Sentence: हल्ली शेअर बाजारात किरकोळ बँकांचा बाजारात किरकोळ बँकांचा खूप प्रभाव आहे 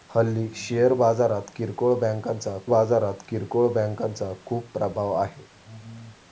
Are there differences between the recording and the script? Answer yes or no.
no